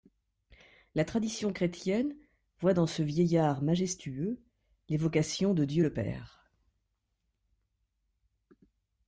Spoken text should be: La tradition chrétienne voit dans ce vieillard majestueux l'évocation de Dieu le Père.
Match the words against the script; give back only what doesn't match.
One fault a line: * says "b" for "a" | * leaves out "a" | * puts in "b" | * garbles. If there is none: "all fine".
all fine